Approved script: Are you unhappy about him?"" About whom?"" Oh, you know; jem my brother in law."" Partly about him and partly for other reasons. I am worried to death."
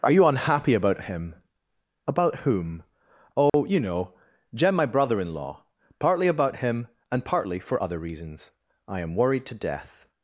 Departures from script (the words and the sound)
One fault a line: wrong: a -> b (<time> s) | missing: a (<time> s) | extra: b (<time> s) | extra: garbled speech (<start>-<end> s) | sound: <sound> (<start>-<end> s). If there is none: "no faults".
sound: dropout (3.5-3.5 s)